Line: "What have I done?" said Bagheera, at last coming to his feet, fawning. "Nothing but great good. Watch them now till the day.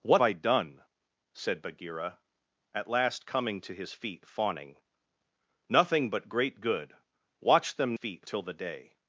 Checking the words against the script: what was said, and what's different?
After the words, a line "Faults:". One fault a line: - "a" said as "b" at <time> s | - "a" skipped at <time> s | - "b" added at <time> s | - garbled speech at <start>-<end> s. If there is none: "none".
"What I done?" said Bagheera, at last coming to his feet, fawning. "Nothing but great good. Watch them feet till the day.
Faults:
- "have" skipped at 0.2 s
- "now" said as "feet" at 7.9 s